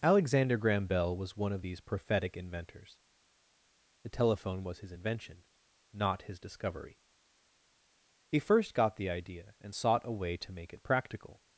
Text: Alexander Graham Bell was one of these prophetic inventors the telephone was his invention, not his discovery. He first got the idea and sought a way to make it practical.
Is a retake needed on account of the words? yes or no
no